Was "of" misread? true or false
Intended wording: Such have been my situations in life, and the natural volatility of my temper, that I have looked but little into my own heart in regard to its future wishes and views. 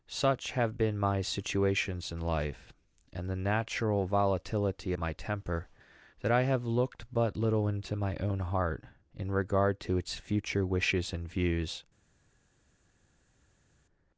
true